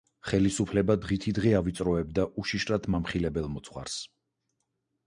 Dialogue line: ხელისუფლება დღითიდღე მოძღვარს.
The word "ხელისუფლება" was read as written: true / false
true